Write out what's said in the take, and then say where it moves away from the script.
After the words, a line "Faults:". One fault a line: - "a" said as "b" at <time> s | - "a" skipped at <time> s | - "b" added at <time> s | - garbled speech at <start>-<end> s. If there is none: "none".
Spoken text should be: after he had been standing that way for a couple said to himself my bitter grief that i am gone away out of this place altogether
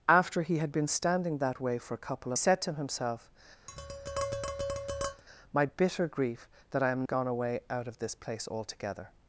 after he had been standing that way for a couple said to himself my bitter grief that i am gone away out of this place altogether
Faults:
none